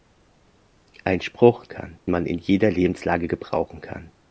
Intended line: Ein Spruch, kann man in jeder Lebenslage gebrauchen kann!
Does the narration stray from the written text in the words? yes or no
no